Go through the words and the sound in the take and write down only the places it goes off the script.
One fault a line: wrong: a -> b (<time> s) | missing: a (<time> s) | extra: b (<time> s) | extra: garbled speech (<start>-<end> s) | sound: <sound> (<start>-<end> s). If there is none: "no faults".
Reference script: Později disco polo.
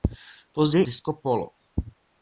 no faults